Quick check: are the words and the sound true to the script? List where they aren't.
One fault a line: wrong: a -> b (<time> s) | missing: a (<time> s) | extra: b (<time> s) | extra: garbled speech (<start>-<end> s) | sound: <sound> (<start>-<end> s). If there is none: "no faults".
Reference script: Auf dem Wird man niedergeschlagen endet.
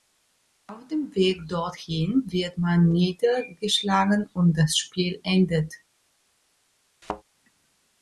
extra: Weg dorthin (1.1 s)
extra: und das Spiel (4.3 s)
sound: thud (7.0-7.2 s)